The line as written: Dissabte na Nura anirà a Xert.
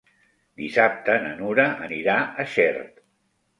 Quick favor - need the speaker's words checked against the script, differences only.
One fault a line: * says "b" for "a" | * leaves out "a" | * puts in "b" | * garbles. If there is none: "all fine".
all fine